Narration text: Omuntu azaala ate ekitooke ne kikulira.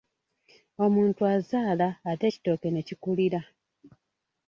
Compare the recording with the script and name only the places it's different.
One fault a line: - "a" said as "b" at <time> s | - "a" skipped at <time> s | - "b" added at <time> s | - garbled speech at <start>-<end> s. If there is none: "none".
none